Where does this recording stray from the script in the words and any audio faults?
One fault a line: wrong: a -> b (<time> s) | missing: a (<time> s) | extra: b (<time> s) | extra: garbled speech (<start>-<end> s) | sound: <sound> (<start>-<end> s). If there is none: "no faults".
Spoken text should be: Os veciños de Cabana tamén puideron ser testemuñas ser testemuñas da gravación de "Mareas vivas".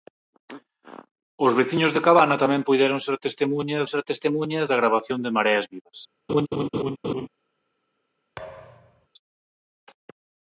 sound: laugh (6.3-7.3 s)
sound: thud (8.4-9.1 s)